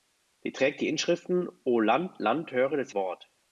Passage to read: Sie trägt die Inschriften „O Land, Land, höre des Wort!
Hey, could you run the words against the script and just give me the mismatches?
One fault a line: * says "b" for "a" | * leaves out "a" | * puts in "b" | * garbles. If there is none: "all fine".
all fine